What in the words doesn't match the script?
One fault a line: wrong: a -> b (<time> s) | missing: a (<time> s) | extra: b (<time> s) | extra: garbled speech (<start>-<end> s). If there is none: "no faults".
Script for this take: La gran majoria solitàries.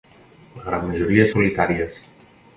no faults